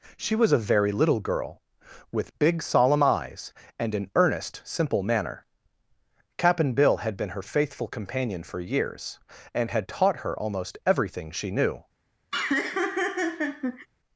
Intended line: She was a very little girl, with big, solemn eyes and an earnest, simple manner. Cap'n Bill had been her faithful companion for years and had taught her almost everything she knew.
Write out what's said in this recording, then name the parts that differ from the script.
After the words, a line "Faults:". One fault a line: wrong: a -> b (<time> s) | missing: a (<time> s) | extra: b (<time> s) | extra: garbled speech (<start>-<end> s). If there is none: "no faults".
She was a very little girl, with big, solemn eyes and an earnest, simple manner. Cap'n Bill had been her faithful companion for years and had taught her almost everything she knew.
Faults:
no faults